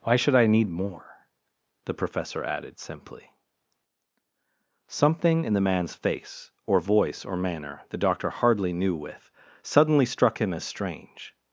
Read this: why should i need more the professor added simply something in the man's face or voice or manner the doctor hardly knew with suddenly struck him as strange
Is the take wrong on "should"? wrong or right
right